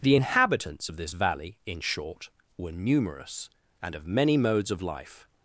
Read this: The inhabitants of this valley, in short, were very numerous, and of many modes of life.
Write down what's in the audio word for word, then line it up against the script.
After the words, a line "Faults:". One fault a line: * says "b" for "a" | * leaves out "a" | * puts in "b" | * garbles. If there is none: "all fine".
The inhabitants of this valley, in short, were numerous, and of many modes of life.
Faults:
* leaves out "very"